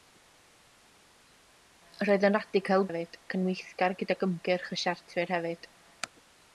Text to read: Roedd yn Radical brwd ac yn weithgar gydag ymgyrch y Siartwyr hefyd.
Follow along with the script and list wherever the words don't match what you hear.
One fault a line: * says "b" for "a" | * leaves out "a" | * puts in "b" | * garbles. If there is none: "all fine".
* says "hefyd" for "brwd"